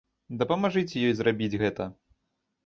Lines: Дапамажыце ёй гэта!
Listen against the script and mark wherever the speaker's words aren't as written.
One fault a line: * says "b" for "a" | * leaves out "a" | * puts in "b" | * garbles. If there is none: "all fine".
* puts in "зрабіць"